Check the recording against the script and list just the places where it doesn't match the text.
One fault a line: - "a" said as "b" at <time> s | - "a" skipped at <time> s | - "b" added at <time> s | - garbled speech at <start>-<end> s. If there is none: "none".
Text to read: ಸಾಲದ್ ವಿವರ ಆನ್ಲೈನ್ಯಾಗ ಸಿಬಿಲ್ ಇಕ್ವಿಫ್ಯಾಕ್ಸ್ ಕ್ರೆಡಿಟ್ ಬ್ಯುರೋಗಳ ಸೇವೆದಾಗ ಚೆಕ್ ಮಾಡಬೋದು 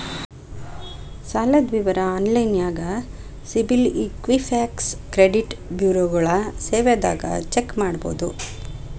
none